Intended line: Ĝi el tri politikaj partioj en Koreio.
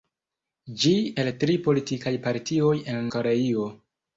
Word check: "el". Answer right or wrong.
right